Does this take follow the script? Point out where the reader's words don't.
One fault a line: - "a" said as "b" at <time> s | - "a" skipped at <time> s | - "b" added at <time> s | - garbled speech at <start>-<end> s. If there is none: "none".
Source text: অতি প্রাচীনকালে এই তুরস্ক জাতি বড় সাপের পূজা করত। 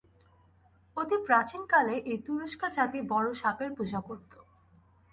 none